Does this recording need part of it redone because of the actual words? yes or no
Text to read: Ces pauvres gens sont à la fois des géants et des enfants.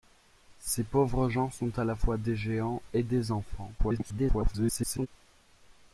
yes